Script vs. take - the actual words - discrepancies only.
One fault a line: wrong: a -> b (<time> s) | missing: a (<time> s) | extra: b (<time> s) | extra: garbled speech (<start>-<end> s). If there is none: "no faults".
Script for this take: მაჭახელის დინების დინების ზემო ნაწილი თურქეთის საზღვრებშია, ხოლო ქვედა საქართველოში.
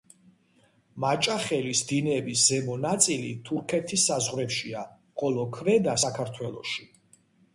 missing: დინების (2.5 s)